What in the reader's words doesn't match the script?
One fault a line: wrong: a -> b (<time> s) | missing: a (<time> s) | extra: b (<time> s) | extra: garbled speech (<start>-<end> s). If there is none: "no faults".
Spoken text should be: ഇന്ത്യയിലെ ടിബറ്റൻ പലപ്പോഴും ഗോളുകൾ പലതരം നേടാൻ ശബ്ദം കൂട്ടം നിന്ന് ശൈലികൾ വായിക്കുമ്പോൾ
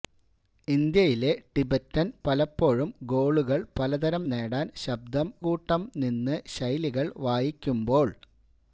no faults